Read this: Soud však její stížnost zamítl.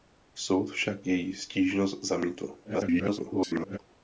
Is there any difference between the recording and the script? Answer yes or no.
yes